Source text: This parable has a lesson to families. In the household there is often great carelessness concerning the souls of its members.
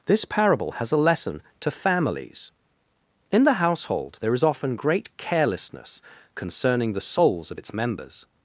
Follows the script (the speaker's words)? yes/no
yes